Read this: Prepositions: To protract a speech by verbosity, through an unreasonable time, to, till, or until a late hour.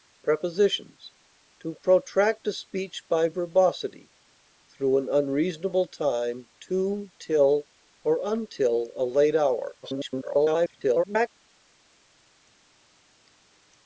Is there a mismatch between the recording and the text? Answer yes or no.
yes